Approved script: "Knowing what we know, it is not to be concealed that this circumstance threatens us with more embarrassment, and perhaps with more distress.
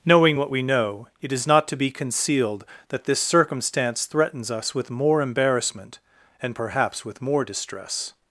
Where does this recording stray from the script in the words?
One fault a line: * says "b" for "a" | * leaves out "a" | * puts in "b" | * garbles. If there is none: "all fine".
all fine